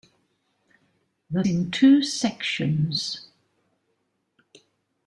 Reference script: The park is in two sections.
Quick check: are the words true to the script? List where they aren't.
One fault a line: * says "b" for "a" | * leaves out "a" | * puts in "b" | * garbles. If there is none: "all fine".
* leaves out "park is"